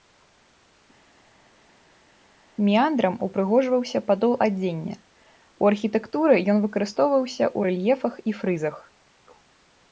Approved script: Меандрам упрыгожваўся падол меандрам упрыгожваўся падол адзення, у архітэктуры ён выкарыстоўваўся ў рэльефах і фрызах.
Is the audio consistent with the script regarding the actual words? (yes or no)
no